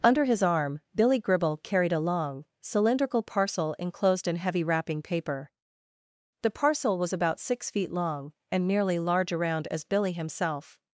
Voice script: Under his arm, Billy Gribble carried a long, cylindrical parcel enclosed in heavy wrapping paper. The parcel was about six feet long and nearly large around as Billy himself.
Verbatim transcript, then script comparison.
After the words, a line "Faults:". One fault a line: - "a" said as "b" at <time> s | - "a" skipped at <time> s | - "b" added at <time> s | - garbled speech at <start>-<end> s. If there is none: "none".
Under his arm, Billy Gribble carried a long, cylindrical parcel enclosed in heavy wrapping paper. The parcel was about six feet long and nearly large around as Billy himself.
Faults:
none